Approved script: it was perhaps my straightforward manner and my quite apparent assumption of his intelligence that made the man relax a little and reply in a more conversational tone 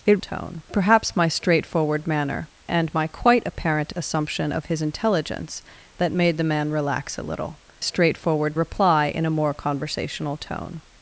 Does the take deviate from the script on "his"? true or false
false